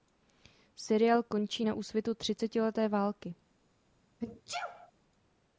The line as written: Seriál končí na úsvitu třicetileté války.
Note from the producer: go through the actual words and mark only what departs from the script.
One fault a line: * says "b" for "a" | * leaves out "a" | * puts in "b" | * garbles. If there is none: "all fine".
all fine